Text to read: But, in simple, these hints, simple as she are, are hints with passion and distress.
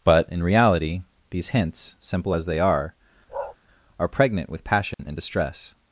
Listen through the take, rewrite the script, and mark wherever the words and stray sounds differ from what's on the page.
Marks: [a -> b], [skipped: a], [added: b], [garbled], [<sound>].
But, in [simple, -> reality] these hints, simple as [she -> they] are, [bark] are [hints -> pregnant] with passion [dropout] and distress.